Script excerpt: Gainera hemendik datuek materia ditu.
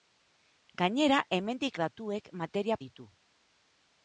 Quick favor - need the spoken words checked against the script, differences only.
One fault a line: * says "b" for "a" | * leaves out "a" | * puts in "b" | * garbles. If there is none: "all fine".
all fine